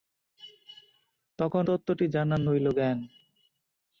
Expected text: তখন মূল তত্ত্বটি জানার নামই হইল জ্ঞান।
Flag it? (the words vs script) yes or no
yes